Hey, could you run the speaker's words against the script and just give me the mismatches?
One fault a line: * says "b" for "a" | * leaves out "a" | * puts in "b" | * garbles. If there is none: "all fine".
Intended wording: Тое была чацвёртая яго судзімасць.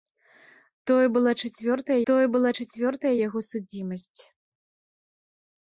* puts in "тое была чацвёртая"